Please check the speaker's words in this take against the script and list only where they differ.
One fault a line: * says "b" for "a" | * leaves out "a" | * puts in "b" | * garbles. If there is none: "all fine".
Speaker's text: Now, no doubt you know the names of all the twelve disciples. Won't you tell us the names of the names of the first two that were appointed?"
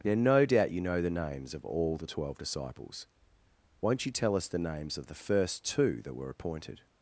* leaves out "names of the"